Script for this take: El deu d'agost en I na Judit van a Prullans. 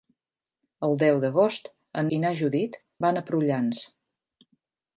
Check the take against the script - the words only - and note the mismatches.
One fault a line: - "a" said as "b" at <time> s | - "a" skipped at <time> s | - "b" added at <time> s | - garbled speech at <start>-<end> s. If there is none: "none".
none